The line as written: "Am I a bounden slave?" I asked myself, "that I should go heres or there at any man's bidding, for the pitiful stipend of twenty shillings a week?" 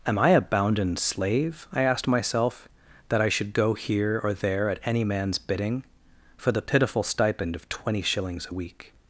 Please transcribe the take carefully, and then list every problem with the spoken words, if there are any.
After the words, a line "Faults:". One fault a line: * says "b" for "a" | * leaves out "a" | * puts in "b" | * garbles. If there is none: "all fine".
"Am I a bounden slave?" I asked myself, "that I should go here or there at any man's bidding, for the pitiful stipend of twenty shillings a week?"
Faults:
* says "here" for "heres"